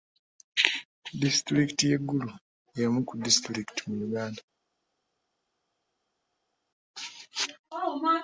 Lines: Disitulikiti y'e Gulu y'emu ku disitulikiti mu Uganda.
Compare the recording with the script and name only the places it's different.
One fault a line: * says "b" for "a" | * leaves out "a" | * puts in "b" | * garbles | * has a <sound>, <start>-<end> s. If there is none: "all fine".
all fine